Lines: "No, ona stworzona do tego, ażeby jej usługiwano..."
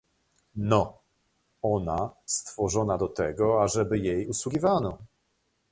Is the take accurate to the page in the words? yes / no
yes